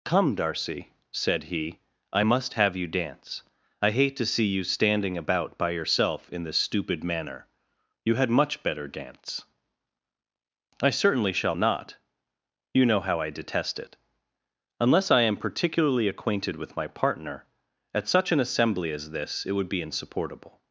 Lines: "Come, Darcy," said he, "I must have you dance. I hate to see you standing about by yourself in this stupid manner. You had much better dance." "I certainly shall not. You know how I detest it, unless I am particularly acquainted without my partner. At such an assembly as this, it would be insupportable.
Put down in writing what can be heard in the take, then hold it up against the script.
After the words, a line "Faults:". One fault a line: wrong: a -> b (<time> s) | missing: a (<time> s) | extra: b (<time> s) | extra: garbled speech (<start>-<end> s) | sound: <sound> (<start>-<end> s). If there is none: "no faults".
"Come, Darcy," said he, "I must have you dance. I hate to see you standing about by yourself in this stupid manner. You had much better dance." "I certainly shall not. You know how I detest it, unless I am particularly acquainted with my partner. At such an assembly as this, it would be insupportable.
Faults:
wrong: without -> with (16.6 s)